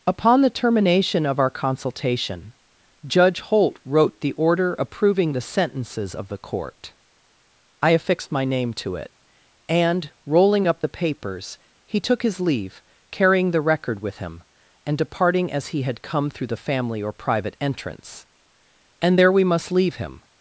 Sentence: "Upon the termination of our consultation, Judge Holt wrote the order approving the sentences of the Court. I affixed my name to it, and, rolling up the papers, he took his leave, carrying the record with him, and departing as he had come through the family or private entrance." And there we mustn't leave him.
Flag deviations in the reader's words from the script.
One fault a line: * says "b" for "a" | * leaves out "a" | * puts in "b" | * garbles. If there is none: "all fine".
* says "must" for "mustn't"